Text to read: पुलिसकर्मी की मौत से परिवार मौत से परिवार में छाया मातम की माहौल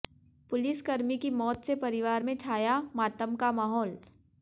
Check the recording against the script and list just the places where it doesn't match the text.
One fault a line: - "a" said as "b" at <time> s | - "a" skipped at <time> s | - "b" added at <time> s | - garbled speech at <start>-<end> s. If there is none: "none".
- "मौत से परिवार" skipped at 2.2 s
- "की" said as "का" at 3.4 s